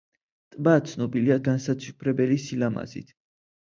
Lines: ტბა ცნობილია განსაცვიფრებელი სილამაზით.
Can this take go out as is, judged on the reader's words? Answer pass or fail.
pass